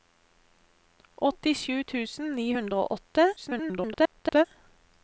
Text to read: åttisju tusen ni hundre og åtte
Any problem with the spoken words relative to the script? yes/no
yes